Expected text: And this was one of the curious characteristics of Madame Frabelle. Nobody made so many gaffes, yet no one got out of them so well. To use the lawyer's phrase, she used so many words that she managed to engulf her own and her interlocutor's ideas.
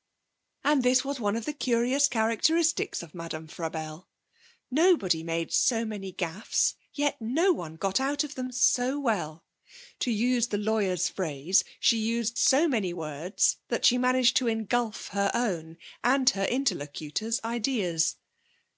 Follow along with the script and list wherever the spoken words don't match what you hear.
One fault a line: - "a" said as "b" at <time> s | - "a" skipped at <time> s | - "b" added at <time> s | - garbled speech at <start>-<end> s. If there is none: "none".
none